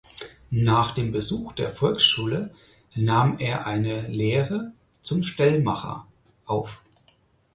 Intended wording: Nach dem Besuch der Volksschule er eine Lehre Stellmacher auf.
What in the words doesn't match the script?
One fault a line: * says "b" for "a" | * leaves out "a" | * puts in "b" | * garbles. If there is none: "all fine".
* puts in "nahm"
* puts in "zum"